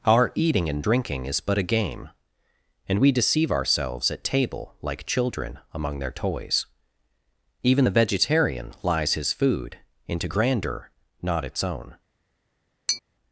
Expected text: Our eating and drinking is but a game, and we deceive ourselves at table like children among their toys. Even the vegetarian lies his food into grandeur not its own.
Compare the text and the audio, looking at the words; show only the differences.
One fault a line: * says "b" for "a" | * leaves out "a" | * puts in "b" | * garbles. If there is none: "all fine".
all fine